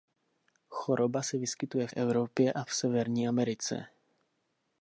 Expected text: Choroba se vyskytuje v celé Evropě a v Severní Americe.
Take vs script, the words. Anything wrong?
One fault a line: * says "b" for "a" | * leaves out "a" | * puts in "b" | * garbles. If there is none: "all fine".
* leaves out "celé"